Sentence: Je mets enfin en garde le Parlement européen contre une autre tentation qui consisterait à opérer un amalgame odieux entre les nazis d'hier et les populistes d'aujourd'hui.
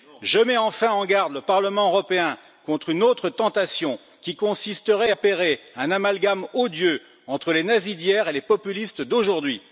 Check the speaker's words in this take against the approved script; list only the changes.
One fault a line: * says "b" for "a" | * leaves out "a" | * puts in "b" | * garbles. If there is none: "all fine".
* leaves out "à"